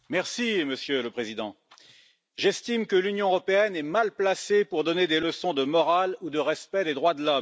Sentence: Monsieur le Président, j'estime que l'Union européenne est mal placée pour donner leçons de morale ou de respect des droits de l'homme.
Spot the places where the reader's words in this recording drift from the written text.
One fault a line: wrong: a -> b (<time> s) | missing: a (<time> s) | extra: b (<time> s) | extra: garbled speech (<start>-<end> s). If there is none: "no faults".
extra: des (5.1 s)